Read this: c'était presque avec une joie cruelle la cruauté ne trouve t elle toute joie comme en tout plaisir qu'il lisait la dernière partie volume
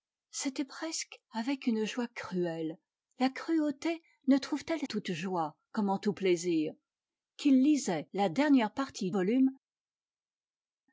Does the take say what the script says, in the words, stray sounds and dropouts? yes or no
yes